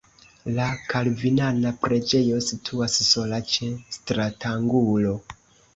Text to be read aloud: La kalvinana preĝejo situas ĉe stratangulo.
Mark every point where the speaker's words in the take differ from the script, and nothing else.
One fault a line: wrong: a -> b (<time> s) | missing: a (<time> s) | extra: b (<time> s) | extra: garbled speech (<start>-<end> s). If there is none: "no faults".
extra: sola (3.1 s)